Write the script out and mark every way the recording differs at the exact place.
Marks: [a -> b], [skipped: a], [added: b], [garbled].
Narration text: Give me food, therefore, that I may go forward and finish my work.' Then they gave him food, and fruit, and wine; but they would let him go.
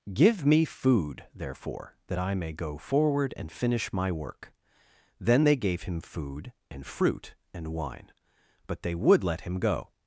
Give me food, therefore, that I may go forward and finish my work.' Then they gave him food, and fruit, and wine; but they would let him go.